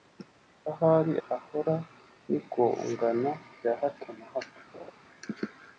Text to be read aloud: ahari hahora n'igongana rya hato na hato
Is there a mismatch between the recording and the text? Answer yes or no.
no